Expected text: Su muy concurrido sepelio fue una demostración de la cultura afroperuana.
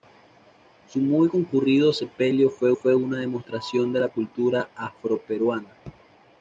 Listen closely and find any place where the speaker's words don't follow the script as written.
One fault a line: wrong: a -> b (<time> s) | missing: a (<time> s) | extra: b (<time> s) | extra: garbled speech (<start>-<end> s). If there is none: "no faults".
extra: fue (2.7 s)